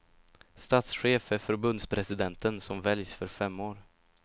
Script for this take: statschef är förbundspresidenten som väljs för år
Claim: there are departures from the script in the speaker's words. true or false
true